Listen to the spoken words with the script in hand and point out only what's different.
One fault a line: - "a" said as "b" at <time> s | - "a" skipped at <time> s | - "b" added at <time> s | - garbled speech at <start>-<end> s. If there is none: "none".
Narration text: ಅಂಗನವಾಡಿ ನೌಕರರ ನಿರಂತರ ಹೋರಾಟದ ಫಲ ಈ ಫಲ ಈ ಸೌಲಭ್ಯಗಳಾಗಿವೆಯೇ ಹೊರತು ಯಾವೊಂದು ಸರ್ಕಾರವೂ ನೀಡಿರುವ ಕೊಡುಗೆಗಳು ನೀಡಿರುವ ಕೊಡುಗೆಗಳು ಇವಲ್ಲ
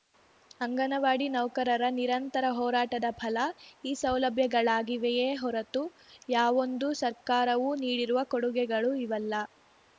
- "ಫಲ ಈ" skipped at 3.9 s
- "ನೀಡಿರುವ ಕೊಡುಗೆಗಳು" skipped at 8.9 s